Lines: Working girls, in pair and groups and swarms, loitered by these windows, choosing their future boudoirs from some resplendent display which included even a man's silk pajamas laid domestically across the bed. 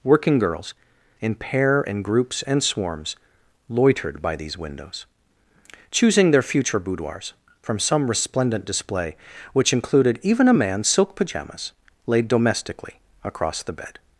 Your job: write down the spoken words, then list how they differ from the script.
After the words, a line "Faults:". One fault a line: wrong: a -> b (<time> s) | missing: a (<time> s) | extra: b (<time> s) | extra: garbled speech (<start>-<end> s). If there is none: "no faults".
Working girls, in pair and groups and swarms, loitered by these windows, choosing their future boudoirs from some resplendent display which included even a man's silk pajamas laid domestically across the bed.
Faults:
no faults